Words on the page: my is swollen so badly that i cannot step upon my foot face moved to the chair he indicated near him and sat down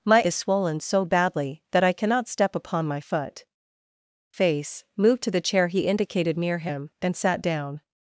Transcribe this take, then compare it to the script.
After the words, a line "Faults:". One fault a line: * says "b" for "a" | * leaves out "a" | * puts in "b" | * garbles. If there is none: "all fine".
my is swollen so badly that i cannot step upon my foot face moved to the chair he indicated near him and sat down
Faults:
all fine